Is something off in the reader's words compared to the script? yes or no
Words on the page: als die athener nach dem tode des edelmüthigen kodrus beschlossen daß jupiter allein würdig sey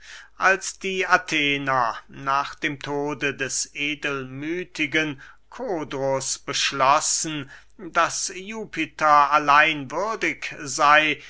no